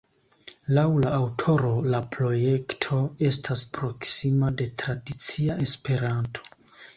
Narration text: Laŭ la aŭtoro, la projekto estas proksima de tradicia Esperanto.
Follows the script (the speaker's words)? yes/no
yes